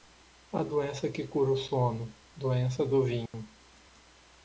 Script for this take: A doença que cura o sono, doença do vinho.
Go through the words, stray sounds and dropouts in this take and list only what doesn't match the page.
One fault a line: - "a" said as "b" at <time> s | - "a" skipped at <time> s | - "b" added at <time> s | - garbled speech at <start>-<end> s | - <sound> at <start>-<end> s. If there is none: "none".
- dropout at 3.3-3.3 s